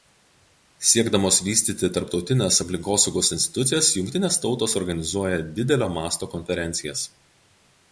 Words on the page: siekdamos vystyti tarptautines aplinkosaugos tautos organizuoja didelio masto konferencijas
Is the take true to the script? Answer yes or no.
no